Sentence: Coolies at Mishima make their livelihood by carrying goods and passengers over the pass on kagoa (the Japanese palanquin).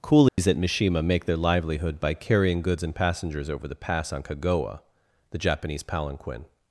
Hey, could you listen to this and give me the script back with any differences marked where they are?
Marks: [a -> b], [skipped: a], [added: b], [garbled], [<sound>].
Coolies [dropout] at Mishima make their livelihood by carrying goods and passengers over the pass on kagoa (the Japanese palanquin).